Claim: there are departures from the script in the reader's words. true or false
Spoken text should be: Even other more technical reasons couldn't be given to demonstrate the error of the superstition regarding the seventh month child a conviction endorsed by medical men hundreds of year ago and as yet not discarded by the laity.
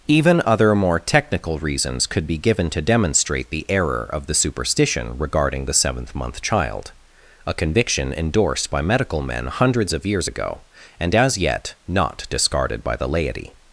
true